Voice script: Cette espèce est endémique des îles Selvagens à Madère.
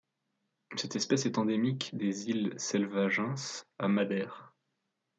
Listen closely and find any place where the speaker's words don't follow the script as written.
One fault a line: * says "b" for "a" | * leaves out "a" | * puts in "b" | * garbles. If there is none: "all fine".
all fine